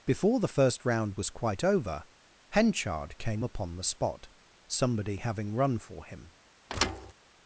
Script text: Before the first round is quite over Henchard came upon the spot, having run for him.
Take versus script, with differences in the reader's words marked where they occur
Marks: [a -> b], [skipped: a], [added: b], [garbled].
Before the first round [is -> was] quite over Henchard came upon the spot, [added: somebody] having run for him.